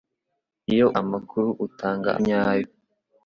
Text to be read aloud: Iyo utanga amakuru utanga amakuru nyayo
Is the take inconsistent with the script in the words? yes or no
yes